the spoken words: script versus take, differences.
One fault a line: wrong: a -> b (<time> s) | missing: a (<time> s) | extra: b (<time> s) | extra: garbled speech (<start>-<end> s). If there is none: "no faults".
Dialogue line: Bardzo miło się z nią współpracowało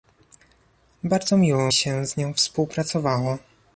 no faults